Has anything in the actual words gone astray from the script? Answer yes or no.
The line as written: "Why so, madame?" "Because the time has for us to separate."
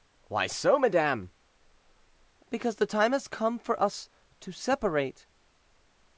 yes